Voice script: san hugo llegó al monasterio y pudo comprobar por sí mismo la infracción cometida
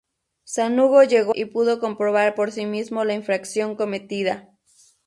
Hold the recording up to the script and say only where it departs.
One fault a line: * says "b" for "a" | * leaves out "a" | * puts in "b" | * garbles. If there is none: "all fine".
* leaves out "al monasterio"